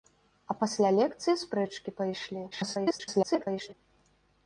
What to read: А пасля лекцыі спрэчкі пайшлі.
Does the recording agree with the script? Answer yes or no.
no